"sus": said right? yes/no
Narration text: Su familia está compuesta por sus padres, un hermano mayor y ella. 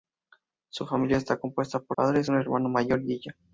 no